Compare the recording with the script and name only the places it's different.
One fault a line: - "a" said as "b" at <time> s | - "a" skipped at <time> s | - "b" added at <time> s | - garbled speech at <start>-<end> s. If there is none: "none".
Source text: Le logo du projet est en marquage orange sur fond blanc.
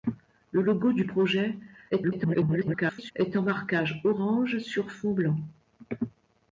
- garbled speech at 1.9-3.1 s